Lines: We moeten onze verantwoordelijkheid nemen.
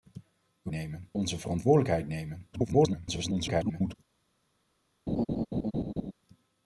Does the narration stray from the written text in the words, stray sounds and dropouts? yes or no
yes